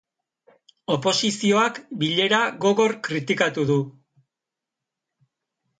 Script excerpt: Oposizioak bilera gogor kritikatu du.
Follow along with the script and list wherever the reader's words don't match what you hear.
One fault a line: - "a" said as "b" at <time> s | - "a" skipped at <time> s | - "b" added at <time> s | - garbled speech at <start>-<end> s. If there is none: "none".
none